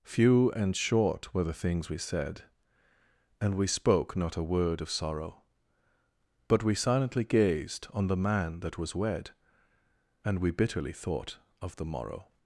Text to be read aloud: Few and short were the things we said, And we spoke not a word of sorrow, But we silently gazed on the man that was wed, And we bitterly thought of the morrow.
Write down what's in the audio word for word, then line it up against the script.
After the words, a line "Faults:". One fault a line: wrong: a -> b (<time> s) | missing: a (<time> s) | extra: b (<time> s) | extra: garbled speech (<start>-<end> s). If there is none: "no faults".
Few and short were the things we said, And we spoke not a word of sorrow, But we silently gazed on the man that was wed, And we bitterly thought of the morrow.
Faults:
no faults